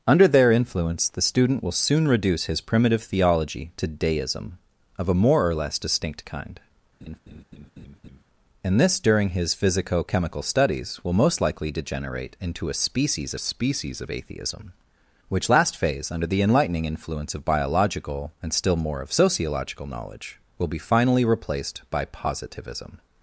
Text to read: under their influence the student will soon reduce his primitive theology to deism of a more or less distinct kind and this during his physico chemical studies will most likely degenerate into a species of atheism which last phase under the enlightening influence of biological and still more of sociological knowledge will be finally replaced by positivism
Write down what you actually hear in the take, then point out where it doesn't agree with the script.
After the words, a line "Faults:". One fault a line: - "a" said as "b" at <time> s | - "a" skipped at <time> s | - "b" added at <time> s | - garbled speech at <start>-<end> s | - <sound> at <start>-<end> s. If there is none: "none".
under their influence the student will soon reduce his primitive theology to deism of a more or less distinct kind and this during his physico chemical studies will most likely degenerate into a species species of atheism which last phase under the enlightening influence of biological and still more of sociological knowledge will be finally replaced by positivism
Faults:
- laugh at 7.0-8.2 s
- "species" added at 13.4 s